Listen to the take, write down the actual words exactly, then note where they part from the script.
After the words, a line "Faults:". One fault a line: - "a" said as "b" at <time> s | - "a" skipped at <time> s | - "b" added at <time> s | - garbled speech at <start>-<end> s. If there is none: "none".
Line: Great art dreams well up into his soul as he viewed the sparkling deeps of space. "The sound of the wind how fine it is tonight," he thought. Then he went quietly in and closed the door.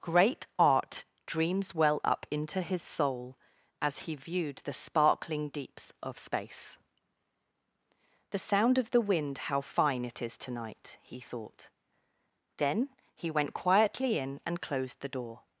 Great art dreams well up into his soul as he viewed the sparkling deeps of space. "The sound of the wind how fine it is tonight," he thought. Then he went quietly in and closed the door.
Faults:
none